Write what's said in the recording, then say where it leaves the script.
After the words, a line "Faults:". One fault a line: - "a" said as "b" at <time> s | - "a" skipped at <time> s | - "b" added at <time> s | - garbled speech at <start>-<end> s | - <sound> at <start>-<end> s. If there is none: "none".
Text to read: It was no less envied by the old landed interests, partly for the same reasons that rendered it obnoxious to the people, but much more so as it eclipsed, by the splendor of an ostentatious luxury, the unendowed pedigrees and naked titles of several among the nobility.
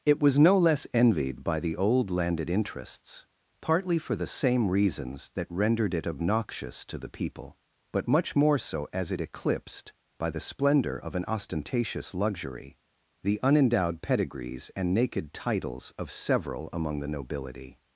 It was no less envied by the old landed interests, partly for the same reasons that rendered it obnoxious to the people, but much more so as it eclipsed, by the splendor of an ostentatious luxury, the unendowed pedigrees and naked titles of several among the nobility.
Faults:
none